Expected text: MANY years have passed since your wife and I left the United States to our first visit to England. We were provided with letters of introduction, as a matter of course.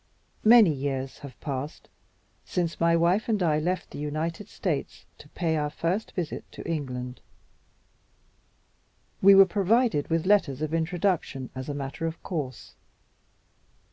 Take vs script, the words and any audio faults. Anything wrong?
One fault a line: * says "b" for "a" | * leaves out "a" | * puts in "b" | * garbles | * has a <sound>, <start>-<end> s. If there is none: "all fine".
* says "my" for "your"
* puts in "pay"